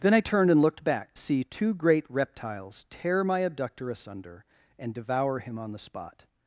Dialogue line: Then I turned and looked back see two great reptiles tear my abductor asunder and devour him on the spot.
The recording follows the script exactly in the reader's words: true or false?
true